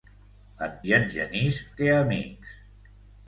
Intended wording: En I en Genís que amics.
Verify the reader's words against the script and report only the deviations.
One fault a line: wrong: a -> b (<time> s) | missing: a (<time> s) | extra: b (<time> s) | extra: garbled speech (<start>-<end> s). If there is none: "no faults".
no faults